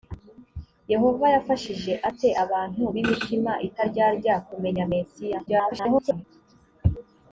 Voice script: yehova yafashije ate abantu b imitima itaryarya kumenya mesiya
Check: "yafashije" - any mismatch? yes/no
no